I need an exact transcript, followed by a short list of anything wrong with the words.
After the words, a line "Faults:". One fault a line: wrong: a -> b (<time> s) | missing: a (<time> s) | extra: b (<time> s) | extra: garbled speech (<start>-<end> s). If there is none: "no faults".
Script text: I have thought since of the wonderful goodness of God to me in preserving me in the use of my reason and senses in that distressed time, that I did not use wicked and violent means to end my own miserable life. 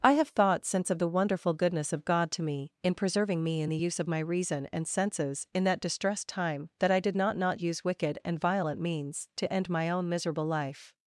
I have thought since of the wonderful goodness of God to me in preserving me in the use of my reason and senses in that distressed time, that I did not not use wicked and violent means to end my own miserable life.
Faults:
extra: not (7.3 s)